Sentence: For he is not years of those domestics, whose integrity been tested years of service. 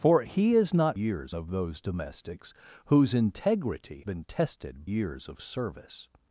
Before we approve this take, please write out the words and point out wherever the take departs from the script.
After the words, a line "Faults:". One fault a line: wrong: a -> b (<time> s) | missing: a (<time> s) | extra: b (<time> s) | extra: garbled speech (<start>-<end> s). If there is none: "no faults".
For he is not years of those domestics, whose integrity been tested years of service.
Faults:
no faults